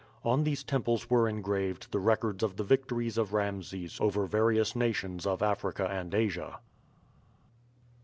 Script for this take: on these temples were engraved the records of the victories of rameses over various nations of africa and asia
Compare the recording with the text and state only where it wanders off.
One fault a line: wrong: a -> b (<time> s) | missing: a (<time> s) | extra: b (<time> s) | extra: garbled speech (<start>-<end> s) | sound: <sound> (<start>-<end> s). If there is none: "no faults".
no faults